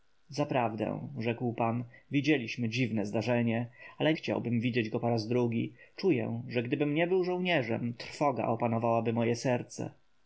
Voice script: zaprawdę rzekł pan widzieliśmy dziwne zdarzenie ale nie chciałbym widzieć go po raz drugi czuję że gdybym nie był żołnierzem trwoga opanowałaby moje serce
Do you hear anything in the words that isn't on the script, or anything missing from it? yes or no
yes